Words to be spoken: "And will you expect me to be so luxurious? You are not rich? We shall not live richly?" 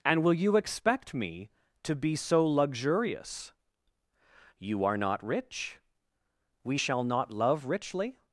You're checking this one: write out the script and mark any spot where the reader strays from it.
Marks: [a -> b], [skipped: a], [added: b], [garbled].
"And will you expect me to be so luxurious? You are not rich? We shall not [live -> love] richly?"